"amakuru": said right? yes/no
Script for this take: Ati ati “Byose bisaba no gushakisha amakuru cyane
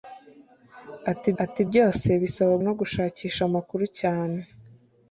yes